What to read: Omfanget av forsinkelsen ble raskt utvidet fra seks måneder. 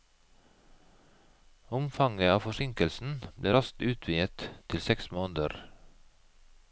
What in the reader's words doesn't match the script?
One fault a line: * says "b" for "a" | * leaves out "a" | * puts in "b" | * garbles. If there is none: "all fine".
* says "til" for "fra"